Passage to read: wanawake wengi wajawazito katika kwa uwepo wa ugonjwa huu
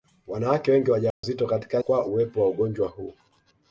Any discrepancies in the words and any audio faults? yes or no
yes